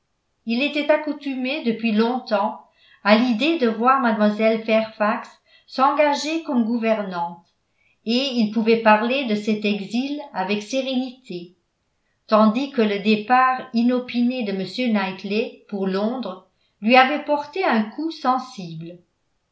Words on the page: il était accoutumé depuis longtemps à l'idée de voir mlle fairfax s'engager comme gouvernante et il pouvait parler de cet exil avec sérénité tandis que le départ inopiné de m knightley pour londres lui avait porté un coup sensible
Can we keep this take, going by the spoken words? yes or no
yes